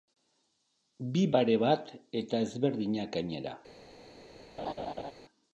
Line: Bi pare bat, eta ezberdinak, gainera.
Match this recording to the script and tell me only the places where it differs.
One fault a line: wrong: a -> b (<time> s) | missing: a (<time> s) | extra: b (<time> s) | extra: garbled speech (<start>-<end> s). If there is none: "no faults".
no faults